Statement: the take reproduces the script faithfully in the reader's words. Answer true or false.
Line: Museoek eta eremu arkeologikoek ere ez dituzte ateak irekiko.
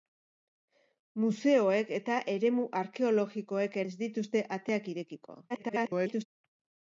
false